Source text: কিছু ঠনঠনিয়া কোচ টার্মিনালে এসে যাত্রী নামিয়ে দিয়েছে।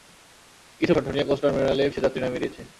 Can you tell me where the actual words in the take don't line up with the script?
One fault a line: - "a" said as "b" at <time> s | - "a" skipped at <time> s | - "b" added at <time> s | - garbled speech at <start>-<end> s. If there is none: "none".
none